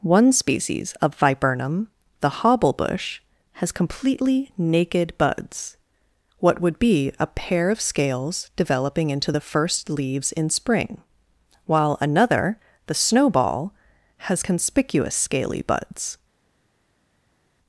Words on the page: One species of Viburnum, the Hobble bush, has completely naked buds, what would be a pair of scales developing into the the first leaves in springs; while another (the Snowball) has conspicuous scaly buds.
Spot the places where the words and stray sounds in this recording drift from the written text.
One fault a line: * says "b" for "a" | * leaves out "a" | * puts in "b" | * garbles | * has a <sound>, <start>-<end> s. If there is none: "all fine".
* leaves out "the"
* says "spring" for "springs"